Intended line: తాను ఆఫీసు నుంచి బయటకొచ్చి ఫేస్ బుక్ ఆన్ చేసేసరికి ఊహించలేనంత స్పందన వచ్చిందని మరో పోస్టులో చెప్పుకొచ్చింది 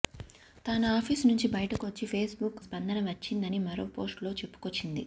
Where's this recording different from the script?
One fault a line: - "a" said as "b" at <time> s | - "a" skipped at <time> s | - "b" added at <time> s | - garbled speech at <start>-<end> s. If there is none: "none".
- "ఆన్ చేసేసరికి ఊహించలేనంత" skipped at 2.6 s